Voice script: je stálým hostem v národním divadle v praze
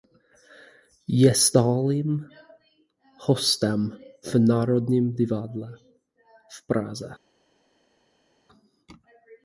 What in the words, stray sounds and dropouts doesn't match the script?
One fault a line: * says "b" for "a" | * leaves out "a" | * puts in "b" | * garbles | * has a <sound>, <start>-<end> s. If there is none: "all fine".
all fine